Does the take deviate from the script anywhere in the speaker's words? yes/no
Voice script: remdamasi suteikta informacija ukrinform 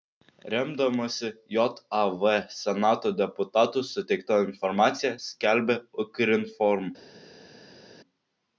yes